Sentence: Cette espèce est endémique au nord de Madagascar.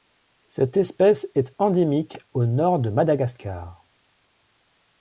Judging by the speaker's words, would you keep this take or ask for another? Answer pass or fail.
pass